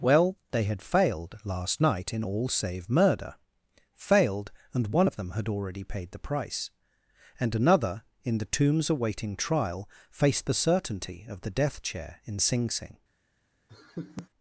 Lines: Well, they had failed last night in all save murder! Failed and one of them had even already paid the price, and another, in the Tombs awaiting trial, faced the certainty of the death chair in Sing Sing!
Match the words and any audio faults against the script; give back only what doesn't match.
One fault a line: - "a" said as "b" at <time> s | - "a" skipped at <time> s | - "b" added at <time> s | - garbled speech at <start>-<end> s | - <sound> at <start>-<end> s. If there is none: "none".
- "even" skipped at 5.5 s
- laugh at 13.7-14.3 s